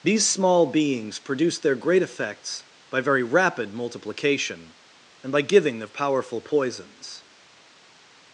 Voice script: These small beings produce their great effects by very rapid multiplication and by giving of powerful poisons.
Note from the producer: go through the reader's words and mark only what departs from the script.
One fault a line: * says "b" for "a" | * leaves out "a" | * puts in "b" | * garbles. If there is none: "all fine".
all fine